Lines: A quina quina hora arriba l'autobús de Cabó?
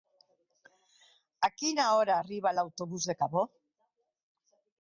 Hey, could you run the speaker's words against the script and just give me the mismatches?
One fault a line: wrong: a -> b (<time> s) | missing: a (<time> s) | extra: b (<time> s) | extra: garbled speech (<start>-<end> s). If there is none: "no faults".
missing: quina (1.9 s)